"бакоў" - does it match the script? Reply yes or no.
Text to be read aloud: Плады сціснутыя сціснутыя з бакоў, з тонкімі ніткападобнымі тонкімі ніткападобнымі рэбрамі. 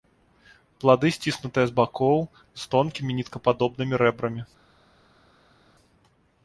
yes